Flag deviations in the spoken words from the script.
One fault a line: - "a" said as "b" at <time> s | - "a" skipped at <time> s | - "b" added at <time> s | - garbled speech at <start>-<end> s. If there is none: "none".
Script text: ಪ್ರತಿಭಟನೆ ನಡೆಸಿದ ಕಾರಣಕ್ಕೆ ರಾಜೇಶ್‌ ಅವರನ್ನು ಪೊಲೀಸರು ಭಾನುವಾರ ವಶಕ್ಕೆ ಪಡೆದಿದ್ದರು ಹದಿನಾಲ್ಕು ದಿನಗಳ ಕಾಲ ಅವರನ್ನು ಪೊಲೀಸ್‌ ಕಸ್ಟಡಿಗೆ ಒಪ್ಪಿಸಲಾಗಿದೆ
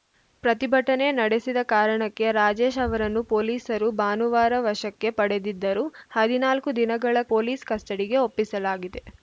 - "ಕಾಲ ಅವರನ್ನು" skipped at 7.2 s